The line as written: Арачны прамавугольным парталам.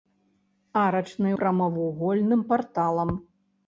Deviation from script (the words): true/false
false